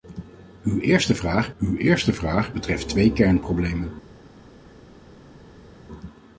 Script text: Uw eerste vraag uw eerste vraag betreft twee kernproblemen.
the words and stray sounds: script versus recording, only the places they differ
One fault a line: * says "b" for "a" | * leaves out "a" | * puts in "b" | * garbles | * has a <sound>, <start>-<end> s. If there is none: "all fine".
all fine